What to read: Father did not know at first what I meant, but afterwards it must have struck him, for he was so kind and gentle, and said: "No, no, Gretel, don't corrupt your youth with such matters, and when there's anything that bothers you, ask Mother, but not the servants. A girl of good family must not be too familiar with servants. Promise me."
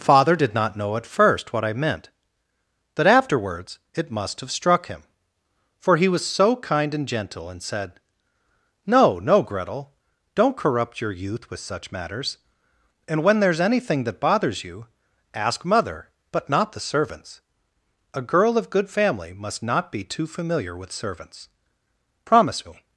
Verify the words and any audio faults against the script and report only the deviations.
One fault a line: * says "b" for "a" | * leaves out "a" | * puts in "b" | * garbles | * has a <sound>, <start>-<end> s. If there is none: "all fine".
* says "that" for "but"